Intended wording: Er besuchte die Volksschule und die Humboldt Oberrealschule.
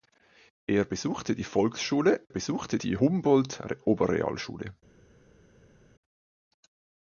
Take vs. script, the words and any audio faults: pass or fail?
fail